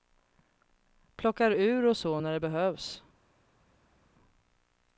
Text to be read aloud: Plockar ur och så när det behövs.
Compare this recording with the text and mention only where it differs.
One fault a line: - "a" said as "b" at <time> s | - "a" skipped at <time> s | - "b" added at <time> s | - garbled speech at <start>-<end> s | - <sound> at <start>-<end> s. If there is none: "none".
none